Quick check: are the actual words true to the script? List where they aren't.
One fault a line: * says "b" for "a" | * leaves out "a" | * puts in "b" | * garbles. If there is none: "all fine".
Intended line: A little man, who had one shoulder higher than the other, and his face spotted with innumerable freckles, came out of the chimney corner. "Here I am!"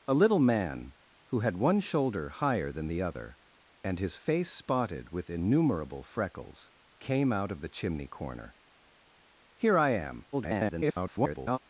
* garbles